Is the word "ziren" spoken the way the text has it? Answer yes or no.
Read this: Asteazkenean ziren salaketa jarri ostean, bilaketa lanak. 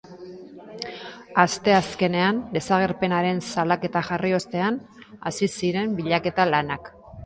no